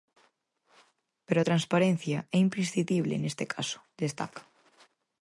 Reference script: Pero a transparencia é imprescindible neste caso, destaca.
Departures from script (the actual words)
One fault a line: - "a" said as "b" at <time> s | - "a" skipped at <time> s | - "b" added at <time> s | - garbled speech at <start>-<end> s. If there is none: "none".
none